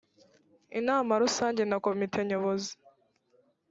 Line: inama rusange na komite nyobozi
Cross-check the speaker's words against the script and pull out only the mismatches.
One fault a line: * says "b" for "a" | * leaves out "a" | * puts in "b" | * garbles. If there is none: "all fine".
all fine